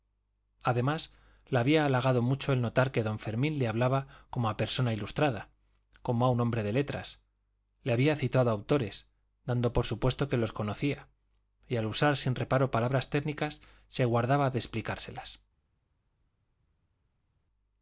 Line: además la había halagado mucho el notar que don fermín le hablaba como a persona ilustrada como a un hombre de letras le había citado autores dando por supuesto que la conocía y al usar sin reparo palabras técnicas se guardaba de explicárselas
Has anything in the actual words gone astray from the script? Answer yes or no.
yes